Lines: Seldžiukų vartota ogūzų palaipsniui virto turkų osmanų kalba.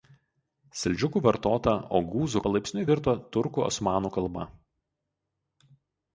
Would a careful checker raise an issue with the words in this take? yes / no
no